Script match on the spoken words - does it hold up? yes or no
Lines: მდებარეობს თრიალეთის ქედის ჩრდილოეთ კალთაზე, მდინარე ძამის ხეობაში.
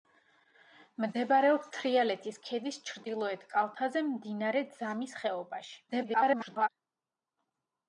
no